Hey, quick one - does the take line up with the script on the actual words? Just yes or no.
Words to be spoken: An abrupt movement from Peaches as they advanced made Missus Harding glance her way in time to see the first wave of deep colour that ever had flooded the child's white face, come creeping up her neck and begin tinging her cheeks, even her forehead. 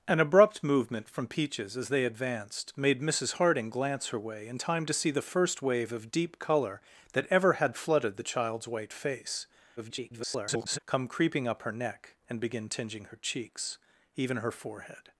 no